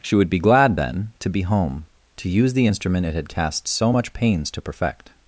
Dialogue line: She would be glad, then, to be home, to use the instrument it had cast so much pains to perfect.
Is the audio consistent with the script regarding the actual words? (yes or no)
yes